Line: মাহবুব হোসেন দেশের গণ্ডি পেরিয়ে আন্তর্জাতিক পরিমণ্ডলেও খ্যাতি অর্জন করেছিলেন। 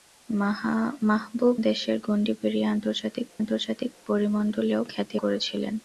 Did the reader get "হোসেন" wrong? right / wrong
wrong